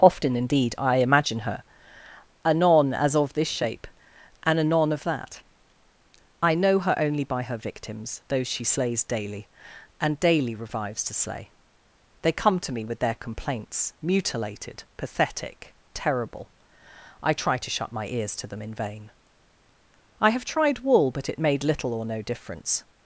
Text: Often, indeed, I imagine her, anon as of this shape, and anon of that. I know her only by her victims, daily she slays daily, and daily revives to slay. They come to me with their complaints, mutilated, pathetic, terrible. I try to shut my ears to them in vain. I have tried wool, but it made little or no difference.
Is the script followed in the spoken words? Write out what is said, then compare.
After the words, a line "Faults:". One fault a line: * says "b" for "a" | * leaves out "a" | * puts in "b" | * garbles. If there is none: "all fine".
Often, indeed, I imagine her, anon as of this shape, and anon of that. I know her only by her victims, those she slays daily, and daily revives to slay. They come to me with their complaints, mutilated, pathetic, terrible. I try to shut my ears to them in vain. I have tried wool, but it made little or no difference.
Faults:
* says "those" for "daily"